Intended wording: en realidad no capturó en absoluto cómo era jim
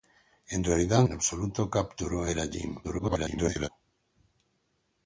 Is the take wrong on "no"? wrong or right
wrong